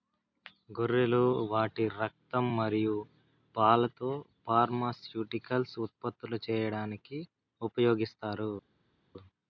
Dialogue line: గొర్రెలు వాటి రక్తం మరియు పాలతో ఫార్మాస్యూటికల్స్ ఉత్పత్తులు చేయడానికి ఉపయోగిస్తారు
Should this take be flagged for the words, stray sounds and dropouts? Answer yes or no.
no